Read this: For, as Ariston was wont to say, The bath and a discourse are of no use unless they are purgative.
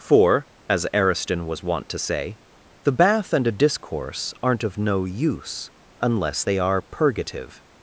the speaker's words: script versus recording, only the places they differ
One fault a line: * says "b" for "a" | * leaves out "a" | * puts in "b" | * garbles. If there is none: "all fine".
* says "aren't" for "are"